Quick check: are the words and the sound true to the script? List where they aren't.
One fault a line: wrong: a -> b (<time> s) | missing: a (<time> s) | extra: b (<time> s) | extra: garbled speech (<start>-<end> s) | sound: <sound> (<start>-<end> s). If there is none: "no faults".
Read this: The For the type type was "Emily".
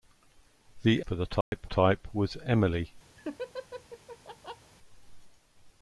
sound: dropout (1.4-1.5 s)
sound: laugh (3.2-4.7 s)